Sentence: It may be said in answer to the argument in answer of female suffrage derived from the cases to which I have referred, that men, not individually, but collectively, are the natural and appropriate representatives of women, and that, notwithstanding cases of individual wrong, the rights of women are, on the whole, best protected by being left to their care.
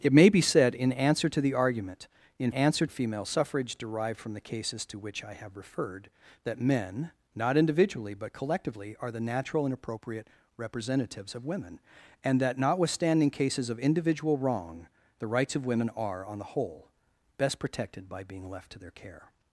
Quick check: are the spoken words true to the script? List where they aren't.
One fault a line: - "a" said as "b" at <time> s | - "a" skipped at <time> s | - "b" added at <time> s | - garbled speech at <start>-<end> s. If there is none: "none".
none